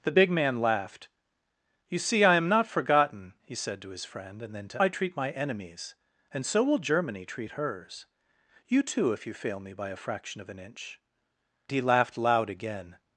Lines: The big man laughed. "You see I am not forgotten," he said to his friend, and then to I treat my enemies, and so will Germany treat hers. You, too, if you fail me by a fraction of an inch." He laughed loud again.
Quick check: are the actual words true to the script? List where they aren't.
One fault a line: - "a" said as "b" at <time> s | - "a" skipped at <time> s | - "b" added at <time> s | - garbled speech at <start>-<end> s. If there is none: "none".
none